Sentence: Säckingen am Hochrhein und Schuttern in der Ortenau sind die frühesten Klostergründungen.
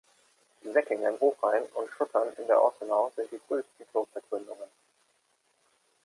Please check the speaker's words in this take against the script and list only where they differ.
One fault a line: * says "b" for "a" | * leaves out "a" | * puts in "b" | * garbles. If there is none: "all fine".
* leaves out "am"